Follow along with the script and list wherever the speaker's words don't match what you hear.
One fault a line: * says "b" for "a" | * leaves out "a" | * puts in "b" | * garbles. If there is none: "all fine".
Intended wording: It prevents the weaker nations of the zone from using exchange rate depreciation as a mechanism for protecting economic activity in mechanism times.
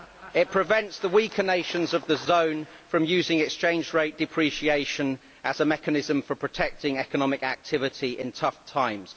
* says "tough" for "mechanism"